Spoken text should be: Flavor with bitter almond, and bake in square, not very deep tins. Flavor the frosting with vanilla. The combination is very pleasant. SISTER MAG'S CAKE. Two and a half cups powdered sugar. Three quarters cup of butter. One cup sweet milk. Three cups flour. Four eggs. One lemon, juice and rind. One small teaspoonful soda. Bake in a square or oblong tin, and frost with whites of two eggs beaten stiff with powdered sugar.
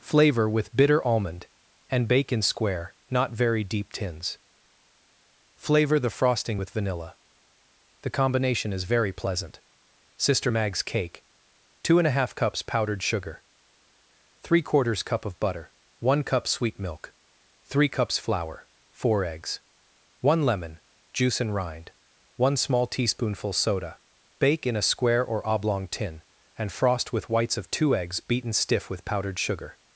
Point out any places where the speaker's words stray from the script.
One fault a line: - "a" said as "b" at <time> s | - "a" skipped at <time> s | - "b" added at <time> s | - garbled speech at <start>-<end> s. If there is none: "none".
none